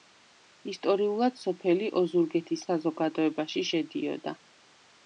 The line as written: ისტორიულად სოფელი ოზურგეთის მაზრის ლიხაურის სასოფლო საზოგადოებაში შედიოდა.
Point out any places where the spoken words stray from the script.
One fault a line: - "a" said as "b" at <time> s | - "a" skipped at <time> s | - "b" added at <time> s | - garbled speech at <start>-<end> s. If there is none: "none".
- "მაზრის ლიხაურის სასოფლო" skipped at 2.6 s